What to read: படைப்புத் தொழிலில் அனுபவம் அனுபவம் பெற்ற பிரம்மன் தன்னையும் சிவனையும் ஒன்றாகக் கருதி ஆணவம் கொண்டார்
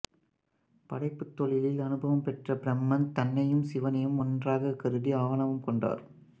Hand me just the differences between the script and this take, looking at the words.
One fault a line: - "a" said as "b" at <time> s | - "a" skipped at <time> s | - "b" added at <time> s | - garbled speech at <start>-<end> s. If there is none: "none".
- "அனுபவம்" skipped at 2.2 s